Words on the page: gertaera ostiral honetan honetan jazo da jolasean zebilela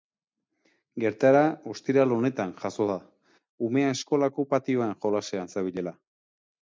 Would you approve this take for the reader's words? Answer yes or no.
no